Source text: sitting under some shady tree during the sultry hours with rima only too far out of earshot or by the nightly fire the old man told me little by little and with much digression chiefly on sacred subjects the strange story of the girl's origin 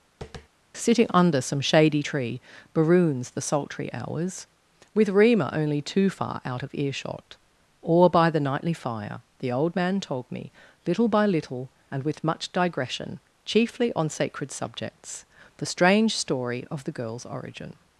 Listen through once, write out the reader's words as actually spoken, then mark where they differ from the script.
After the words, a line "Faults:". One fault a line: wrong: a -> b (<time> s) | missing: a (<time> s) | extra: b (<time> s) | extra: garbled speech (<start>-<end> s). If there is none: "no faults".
sitting under some shady tree baroons the sultry hours with rima only too far out of earshot or by the nightly fire the old man told me little by little and with much digression chiefly on sacred subjects the strange story of the girl's origin
Faults:
wrong: during -> baroons (2.7 s)